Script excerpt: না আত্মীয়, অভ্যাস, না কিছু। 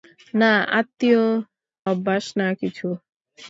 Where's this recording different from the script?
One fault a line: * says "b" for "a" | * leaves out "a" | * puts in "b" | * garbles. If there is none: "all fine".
all fine